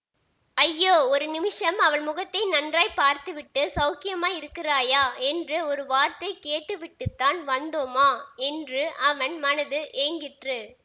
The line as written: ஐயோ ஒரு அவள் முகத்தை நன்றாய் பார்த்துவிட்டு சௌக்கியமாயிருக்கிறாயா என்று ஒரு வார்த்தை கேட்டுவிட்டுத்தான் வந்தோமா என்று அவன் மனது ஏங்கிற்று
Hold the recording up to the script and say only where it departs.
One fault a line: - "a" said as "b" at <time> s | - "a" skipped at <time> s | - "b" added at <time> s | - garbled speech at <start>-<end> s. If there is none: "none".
- "நிமிஷம்" added at 1.3 s